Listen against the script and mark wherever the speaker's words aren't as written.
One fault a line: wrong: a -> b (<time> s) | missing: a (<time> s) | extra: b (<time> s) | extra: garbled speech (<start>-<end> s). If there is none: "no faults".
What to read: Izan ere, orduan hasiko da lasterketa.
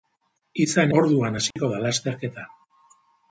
missing: ere (0.9 s)